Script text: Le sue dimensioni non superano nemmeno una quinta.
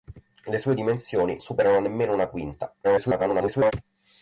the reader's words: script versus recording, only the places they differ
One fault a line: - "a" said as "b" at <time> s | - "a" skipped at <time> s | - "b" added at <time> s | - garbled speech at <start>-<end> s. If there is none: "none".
- "non" skipped at 1.4 s
- garbled speech at 2.8-3.7 s